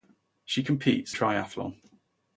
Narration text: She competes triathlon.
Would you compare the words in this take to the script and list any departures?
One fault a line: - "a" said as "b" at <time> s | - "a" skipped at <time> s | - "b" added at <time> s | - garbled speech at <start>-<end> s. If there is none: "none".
none